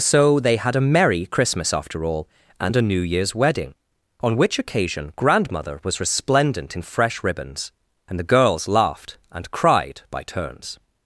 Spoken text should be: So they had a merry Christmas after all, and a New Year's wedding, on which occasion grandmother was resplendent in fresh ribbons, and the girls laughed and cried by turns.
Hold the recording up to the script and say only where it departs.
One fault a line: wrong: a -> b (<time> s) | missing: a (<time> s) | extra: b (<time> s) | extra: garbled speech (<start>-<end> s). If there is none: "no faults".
no faults